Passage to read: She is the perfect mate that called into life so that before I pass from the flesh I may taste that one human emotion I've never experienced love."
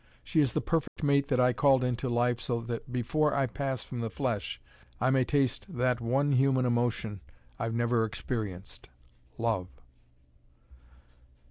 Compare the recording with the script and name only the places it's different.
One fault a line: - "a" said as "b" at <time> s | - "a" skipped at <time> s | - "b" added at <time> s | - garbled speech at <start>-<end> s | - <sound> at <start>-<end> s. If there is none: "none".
- dropout at 0.9-1.0 s
- "I" added at 1.4 s